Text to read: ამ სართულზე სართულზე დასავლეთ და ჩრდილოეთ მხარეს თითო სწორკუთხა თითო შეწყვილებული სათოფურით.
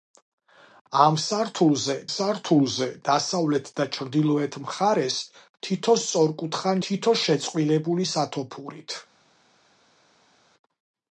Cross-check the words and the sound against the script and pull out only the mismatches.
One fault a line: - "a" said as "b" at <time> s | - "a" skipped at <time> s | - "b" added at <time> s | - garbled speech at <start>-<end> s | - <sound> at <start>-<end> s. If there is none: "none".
none